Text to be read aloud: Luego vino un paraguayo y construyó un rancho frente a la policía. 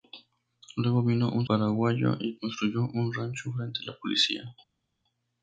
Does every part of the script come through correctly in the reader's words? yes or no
yes